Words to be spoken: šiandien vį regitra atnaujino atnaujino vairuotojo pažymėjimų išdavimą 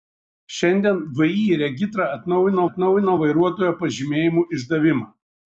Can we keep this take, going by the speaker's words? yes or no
yes